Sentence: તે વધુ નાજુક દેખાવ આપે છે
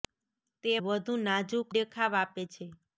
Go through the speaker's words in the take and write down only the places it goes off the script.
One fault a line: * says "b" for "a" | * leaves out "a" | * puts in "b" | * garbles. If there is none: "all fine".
all fine